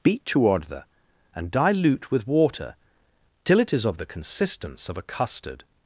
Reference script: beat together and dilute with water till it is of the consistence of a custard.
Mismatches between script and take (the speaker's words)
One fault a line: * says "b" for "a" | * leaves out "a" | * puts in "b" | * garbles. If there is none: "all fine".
all fine